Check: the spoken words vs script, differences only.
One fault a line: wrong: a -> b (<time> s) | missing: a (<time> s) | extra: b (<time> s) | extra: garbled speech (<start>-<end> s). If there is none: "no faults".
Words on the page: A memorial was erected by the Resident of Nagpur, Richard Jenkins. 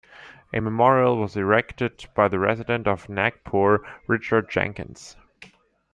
no faults